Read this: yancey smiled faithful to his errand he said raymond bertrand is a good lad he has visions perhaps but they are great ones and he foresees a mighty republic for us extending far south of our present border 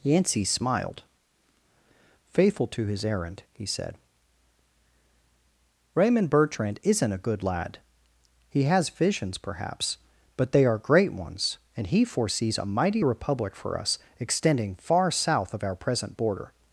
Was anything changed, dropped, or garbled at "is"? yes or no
yes